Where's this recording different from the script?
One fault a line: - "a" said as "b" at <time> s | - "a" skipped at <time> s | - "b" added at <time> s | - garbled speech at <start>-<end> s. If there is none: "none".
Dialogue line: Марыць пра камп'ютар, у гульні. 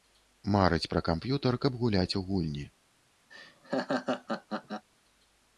- "каб гуляць" added at 1.6 s